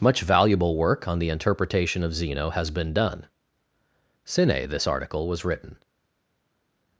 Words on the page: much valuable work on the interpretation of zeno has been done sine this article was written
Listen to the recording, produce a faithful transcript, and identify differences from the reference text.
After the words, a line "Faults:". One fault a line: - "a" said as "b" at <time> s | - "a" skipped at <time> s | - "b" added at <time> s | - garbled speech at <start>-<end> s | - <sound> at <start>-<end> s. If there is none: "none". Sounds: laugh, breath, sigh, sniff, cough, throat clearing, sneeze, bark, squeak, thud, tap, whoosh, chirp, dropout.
much valuable work on the interpretation of zeno has been done sine this article was written
Faults:
none